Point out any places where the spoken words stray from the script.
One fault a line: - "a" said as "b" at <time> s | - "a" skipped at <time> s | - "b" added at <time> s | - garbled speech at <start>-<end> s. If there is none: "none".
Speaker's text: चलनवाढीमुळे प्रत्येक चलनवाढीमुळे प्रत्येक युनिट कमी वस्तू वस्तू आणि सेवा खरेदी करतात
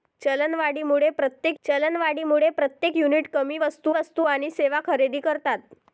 none